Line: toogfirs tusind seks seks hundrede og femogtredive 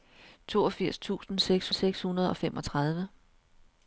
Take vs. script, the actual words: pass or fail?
pass